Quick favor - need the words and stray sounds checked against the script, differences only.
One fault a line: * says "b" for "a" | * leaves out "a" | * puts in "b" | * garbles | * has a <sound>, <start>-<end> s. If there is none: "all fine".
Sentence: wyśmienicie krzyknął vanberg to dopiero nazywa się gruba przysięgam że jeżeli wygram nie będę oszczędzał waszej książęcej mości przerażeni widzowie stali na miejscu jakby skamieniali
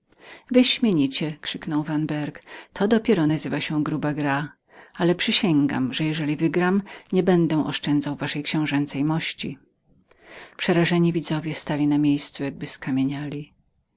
* puts in "gra ale"